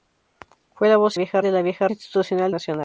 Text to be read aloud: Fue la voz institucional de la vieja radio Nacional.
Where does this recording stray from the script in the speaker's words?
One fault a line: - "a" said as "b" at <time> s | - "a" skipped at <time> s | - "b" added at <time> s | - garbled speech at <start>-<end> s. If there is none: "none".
- "institucional" said as "vieja" at 1.1 s
- "radio" said as "institucional" at 1.9 s